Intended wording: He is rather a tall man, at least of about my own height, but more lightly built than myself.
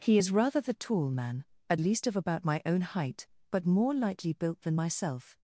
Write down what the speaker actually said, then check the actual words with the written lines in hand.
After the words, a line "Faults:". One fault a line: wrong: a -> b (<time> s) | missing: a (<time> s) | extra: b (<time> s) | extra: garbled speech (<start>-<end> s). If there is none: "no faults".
He is rather the tall man, at least of about my own height, but more lightly built than myself.
Faults:
wrong: a -> the (0.6 s)